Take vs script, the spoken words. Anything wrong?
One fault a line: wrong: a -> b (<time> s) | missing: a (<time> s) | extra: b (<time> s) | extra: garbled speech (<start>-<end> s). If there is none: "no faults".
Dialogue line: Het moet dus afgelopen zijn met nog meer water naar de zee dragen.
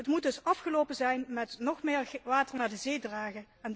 no faults